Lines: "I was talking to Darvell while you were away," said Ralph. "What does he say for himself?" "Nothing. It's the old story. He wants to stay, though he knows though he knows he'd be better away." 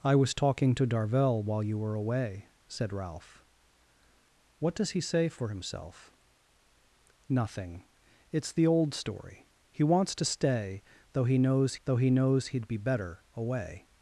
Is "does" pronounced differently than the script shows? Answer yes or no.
no